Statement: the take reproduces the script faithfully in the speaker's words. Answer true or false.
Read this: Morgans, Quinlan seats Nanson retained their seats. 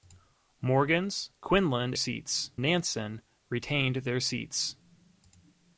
true